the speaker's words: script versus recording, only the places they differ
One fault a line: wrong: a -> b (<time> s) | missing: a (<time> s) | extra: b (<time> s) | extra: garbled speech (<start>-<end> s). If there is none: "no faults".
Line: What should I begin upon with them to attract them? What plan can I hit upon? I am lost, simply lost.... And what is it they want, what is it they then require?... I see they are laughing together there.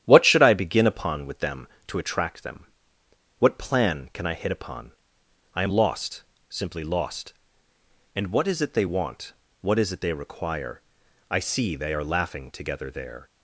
missing: then (10.1 s)